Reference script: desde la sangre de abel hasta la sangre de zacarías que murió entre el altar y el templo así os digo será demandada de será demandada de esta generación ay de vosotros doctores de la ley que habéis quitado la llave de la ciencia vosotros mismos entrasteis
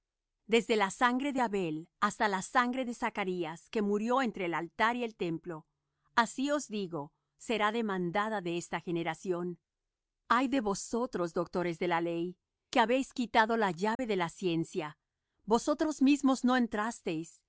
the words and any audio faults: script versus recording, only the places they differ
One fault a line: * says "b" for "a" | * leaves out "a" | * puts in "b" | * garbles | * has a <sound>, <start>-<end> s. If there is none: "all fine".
* leaves out "será demandada de"
* has a dropout, 13.9-14.0 s
* puts in "no"